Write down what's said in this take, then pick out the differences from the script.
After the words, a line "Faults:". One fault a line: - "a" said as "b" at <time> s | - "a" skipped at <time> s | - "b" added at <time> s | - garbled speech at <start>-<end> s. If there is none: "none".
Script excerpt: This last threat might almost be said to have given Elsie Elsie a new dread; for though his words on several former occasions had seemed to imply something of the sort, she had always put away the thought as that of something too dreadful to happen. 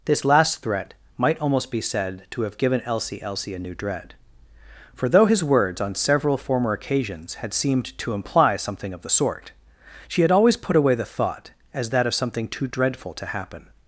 This last threat might almost be said to have given Elsie Elsie a new dread; for though his words on several former occasions had seemed to imply something of the sort, she had always put away the thought as that of something too dreadful to happen.
Faults:
none